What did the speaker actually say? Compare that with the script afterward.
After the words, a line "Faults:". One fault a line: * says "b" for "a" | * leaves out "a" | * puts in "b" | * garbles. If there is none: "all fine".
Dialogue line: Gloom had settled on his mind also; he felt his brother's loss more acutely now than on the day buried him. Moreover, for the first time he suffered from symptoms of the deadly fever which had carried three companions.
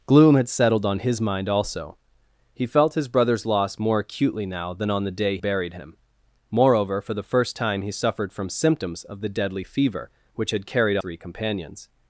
Gloom had settled on his mind also; he felt his brother's loss more acutely now than on the day buried him. Moreover, for the first time he suffered from symptoms of the deadly fever which had carried three companions.
Faults:
all fine